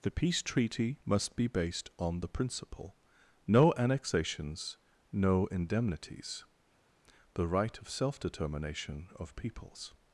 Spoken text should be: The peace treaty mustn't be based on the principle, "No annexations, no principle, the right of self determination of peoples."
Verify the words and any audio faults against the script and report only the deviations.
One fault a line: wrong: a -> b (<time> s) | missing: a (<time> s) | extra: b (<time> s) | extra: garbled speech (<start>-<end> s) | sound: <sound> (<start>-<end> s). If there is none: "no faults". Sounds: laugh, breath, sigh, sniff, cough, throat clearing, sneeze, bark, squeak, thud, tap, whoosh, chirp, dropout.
wrong: mustn't -> must (1.1 s)
wrong: principle -> indemnities (5.5 s)